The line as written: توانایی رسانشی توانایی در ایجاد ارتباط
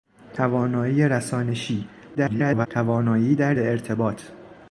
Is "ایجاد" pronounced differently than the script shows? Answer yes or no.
yes